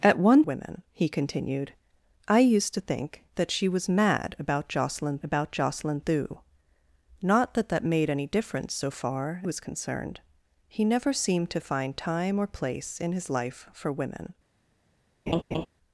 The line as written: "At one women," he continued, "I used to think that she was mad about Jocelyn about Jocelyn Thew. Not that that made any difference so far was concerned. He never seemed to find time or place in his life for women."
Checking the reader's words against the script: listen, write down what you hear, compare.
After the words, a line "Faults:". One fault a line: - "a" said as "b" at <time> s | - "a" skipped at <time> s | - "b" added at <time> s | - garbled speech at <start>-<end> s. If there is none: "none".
"At one women," he continued, "I used to think that she was mad about Jocelyn about Jocelyn Thew. Not that that made any difference so far was concerned. He never seemed to find time or place in his life for women."
Faults:
none